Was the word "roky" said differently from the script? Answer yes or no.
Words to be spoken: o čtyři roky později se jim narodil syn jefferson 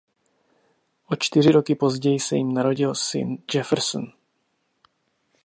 no